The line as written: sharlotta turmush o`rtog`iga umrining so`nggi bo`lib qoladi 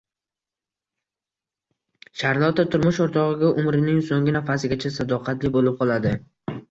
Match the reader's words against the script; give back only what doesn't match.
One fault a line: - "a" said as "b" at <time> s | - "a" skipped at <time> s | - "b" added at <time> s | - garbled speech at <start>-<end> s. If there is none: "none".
- "nafasigacha sadoqatli" added at 4.4 s